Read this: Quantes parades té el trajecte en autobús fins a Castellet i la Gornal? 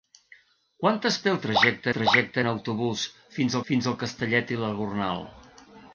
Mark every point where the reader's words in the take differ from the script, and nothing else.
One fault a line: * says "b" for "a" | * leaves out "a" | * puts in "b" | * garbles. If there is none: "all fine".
* leaves out "parades"
* puts in "trajecte"
* puts in "fins"